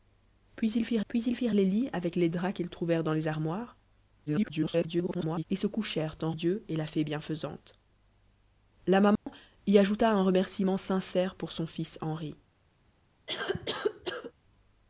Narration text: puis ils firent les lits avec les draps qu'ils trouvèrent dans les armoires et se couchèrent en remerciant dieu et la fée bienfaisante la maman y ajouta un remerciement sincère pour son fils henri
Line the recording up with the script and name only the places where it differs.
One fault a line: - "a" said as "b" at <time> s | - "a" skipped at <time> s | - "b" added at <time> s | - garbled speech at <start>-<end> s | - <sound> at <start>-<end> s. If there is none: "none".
- "puis ils firent" added at 1.1 s
- garbled speech at 4.3-5.4 s
- "remerciant" skipped at 6.3 s
- dropout at 9.2-9.3 s
- cough at 13.3-14.3 s